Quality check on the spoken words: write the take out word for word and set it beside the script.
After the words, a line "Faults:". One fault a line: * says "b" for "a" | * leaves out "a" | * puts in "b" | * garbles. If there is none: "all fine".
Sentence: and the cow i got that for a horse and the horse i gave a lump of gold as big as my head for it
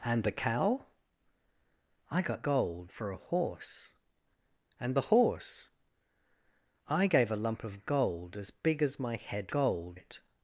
and the cow i got gold for a horse and the horse i gave a lump of gold as big as my head gold it
Faults:
* says "gold" for "that"
* says "gold" for "for"